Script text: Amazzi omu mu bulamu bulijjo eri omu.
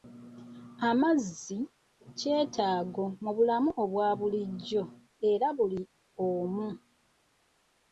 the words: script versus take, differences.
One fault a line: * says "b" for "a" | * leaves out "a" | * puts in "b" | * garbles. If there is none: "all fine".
* says "kyetaago" for "omu"
* puts in "obwa"
* puts in "buli"